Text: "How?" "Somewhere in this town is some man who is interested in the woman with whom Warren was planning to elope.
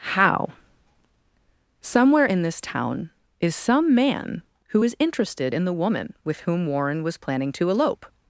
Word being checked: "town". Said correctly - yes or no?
yes